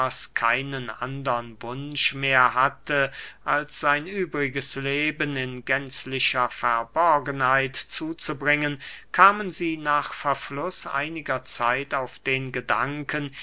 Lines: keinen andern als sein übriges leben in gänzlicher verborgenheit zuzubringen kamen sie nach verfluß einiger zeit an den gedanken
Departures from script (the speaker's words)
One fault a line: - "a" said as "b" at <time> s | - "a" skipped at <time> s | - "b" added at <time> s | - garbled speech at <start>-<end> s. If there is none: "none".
- "wunsch mehr hatte" added at 1.6 s
- "an" said as "auf" at 11.9 s